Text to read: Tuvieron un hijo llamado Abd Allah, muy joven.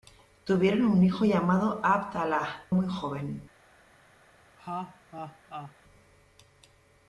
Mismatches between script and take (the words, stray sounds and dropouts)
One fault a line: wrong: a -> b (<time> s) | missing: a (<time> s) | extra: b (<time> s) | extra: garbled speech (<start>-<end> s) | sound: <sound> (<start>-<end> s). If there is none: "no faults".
sound: laugh (4.6-5.8 s)